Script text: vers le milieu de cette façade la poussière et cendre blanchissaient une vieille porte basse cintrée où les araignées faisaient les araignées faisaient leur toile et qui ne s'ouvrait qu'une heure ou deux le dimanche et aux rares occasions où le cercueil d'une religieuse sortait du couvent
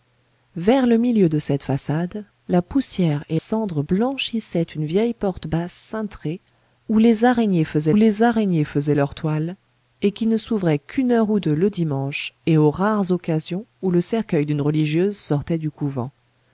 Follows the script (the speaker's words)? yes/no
yes